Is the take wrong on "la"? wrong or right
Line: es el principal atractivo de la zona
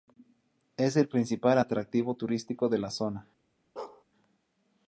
right